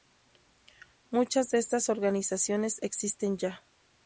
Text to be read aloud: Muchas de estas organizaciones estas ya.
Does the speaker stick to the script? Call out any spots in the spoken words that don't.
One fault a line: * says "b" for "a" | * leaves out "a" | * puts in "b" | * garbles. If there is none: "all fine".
* says "existen" for "estas"